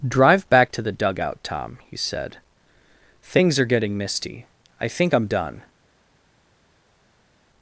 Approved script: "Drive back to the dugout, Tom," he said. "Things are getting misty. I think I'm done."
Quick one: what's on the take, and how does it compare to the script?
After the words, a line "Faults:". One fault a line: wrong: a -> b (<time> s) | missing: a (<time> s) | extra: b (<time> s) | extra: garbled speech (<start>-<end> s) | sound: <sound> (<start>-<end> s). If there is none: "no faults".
"Drive back to the dugout, Tom," he said. "Things are getting misty. I think I'm done."
Faults:
no faults